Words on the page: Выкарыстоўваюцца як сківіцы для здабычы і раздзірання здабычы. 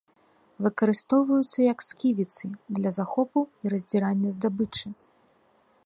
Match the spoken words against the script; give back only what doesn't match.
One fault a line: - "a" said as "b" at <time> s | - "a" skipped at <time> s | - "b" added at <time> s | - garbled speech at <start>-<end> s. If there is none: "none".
- "здабычы" said as "захопу" at 3.0 s